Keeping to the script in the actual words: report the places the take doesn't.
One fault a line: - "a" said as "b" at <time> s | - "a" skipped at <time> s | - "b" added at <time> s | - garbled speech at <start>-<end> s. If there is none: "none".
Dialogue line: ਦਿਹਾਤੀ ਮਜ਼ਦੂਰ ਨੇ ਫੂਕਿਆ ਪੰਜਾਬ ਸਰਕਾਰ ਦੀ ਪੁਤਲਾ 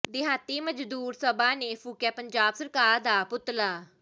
- "ਸਭਾ" added at 1.1 s
- "ਦੀ" said as "ਦਾ" at 3.0 s